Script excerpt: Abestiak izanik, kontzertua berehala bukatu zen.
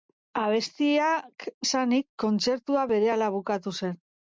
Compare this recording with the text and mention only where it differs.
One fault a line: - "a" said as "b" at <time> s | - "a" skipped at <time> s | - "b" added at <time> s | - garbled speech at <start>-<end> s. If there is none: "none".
none